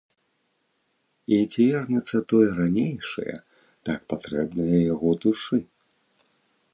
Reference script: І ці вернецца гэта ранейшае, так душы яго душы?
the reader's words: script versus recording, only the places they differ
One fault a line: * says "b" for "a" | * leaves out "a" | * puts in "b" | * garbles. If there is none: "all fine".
* says "тое" for "гэта"
* says "патрэбнае" for "душы"